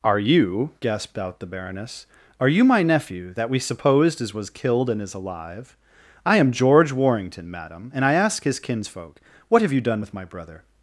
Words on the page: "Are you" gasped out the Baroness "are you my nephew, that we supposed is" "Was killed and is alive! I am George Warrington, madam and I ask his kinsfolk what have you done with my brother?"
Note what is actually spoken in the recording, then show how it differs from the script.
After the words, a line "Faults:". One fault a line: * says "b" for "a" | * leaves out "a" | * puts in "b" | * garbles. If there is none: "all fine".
"Are you" gasped out the Baroness "are you my nephew, that we supposed is" "Was killed and is alive! I am George Warrington, madam and I ask his kinsfolk what have you done with my brother?"
Faults:
all fine